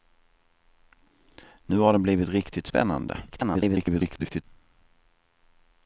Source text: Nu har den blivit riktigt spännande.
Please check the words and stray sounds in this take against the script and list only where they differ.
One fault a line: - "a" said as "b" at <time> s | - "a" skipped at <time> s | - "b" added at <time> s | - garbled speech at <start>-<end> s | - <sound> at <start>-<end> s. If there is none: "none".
- garbled speech at 3.3-4.4 s